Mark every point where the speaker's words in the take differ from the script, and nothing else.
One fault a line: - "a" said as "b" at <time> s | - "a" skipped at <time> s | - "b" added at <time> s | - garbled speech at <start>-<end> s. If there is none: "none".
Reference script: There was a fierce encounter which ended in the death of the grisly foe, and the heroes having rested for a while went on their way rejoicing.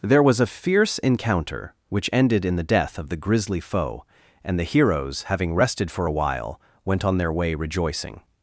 none